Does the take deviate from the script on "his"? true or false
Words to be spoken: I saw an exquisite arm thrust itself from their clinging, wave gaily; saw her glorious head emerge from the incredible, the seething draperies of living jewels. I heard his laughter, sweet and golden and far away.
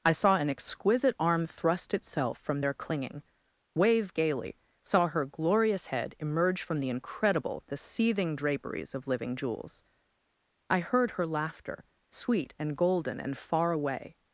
true